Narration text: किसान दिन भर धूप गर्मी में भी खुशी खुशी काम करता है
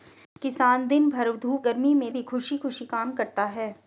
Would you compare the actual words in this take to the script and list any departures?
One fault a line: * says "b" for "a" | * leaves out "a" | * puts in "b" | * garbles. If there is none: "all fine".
all fine